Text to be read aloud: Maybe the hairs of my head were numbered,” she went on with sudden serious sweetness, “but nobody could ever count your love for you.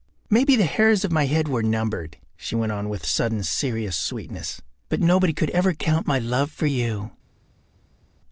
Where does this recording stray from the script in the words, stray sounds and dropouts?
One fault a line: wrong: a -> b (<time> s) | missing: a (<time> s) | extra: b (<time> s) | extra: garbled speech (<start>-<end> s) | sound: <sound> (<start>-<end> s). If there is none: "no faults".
wrong: your -> my (6.1 s)